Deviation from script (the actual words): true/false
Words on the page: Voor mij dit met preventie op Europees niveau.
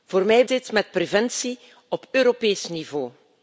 false